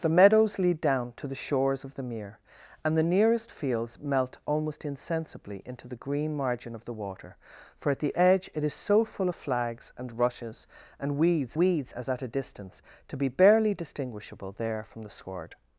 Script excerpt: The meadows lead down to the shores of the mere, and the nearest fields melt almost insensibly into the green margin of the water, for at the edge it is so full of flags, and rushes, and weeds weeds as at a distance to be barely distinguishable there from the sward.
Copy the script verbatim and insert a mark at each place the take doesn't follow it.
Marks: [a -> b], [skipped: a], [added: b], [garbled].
The meadows lead down to the shores of the mere, and the nearest fields melt almost insensibly into the green margin of the water, for at the edge it is so full of flags, and rushes, and weeds weeds as at a distance to be barely distinguishable there from the sward.